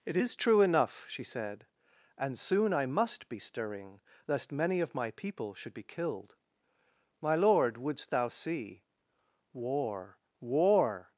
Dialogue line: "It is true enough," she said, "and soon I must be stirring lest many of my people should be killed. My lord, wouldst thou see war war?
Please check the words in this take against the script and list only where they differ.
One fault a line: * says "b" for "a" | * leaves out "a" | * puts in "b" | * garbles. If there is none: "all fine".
all fine